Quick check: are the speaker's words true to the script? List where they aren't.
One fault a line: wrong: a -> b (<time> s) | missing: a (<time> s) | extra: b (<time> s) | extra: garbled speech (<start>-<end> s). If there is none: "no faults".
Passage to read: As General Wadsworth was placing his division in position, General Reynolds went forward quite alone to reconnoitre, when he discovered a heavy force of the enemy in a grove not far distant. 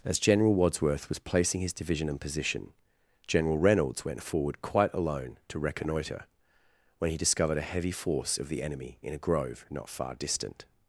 no faults